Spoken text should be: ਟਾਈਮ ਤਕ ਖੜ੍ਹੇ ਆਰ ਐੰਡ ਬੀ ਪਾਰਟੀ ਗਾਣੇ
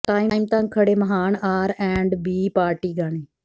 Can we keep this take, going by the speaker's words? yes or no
no